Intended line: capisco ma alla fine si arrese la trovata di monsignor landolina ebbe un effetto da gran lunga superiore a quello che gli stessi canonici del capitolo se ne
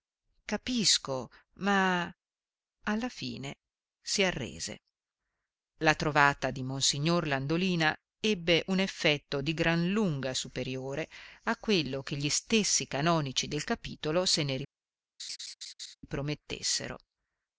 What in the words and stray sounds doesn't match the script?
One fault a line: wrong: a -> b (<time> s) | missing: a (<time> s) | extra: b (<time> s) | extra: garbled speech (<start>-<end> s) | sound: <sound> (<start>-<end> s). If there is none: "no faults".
wrong: da -> di (9.4 s)
sound: laugh (15.2-16.0 s)